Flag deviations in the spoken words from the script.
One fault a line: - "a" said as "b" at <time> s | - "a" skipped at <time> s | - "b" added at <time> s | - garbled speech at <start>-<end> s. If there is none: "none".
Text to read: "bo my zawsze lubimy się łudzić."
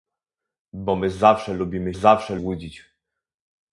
- "się" said as "zawsze" at 1.9 s